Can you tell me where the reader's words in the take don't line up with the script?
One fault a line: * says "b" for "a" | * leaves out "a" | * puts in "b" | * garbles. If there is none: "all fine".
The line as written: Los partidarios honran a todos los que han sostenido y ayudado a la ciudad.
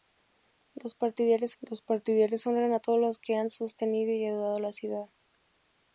* puts in "los partidarios"